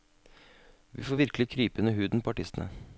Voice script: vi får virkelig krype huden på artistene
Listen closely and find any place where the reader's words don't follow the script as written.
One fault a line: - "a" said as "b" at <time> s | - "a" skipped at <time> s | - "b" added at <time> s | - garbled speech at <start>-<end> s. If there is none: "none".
- "under" added at 1.8 s